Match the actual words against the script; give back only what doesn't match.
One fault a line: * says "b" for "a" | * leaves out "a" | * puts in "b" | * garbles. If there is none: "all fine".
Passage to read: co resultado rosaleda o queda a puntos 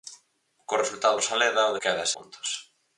all fine